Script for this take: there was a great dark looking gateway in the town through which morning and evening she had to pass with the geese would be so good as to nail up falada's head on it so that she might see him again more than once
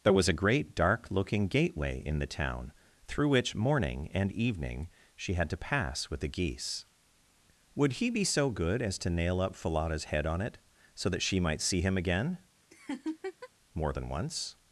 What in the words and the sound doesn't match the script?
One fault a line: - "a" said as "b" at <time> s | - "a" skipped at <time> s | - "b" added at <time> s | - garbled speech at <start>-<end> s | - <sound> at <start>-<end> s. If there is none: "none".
- "he" added at 7.9 s
- laugh at 12.7-13.5 s